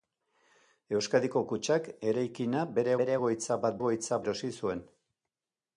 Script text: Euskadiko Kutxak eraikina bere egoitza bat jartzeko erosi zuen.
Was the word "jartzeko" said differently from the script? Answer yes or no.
yes